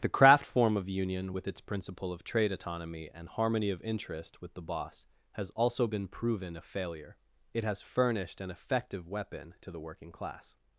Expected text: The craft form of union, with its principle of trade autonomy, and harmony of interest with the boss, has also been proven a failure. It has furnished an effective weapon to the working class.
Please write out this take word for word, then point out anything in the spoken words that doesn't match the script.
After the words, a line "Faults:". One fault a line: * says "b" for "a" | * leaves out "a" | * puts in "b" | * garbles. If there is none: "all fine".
The craft form of union, with its principle of trade autonomy, and harmony of interest with the boss, has also been proven a failure. It has furnished an effective weapon to the working class.
Faults:
all fine